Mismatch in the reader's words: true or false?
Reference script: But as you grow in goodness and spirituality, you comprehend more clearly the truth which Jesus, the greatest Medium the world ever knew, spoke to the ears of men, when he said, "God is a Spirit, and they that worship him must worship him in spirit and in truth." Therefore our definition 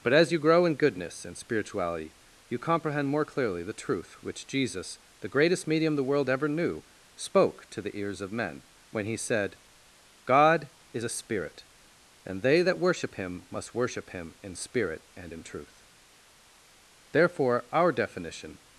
false